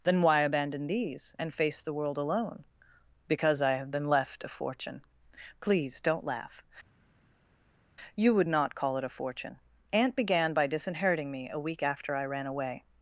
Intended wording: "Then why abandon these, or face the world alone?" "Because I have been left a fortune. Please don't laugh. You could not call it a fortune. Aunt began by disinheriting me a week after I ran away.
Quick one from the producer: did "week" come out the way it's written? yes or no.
yes